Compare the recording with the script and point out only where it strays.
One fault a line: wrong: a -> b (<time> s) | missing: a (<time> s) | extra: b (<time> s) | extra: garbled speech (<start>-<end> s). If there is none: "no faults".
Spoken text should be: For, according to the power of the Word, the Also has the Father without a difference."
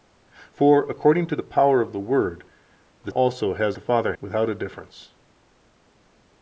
no faults